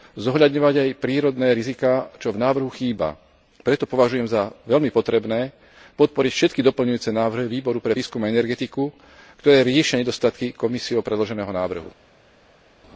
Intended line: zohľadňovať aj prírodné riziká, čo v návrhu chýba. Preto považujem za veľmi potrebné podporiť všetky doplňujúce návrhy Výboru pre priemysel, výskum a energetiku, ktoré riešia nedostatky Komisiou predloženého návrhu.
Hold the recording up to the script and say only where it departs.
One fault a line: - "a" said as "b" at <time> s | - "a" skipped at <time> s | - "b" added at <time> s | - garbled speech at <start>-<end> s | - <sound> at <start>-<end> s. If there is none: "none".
- "priemysel" skipped at 7.9 s